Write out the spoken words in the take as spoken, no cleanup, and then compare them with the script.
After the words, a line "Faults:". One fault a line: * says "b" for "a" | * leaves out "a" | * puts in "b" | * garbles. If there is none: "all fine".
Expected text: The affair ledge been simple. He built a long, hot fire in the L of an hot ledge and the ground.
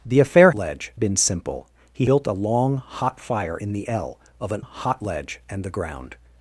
The affair ledge been simple. He built a long, hot fire in the L of an hot ledge and the ground.
Faults:
all fine